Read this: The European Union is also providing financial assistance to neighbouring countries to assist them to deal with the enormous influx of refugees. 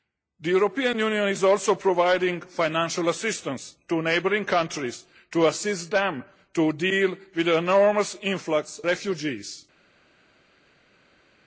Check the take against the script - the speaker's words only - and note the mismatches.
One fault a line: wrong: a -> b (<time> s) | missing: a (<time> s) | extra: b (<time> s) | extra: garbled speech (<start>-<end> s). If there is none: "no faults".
missing: of (8.8 s)